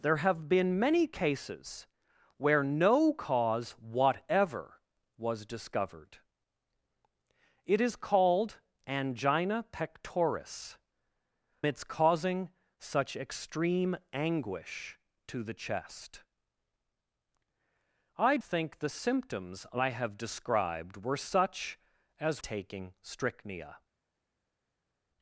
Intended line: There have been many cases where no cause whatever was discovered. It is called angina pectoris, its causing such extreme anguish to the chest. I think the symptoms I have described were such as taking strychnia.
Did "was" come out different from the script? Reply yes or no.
no